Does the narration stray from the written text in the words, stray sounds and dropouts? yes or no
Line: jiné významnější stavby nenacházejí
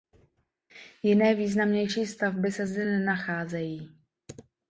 yes